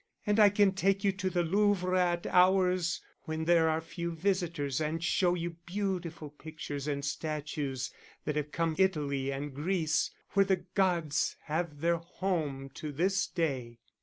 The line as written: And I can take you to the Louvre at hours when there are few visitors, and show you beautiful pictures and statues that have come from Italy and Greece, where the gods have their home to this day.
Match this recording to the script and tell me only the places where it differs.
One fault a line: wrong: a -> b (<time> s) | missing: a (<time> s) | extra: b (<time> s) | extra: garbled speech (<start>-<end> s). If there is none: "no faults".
missing: from (8.7 s)